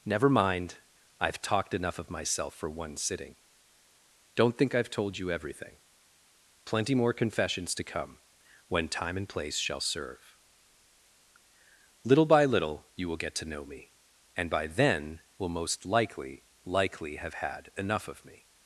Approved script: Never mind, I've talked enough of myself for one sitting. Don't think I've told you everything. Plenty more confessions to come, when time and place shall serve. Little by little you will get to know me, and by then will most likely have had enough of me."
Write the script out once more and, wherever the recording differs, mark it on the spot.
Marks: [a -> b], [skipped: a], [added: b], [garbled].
Never mind, I've talked enough of myself for one sitting. Don't think I've told you everything. Plenty more confessions to come, when time and place shall serve. Little by little you will get to know me, and by then will most likely [added: likely] have had enough of me."